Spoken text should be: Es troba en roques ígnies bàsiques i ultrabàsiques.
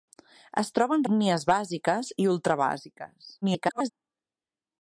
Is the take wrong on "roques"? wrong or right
wrong